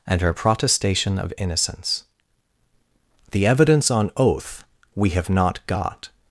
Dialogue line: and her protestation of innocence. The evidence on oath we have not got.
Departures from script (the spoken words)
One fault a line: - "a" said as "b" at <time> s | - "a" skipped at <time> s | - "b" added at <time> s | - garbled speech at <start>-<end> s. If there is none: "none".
none